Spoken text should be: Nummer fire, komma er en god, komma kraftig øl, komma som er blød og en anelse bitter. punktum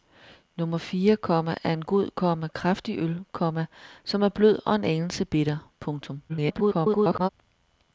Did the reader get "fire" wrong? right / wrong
right